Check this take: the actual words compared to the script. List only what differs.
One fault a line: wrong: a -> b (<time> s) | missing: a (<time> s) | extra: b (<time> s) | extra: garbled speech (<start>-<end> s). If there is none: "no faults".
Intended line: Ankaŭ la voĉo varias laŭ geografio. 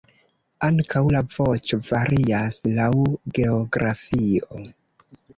no faults